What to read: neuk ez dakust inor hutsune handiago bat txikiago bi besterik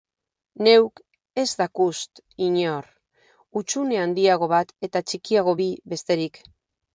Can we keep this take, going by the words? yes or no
no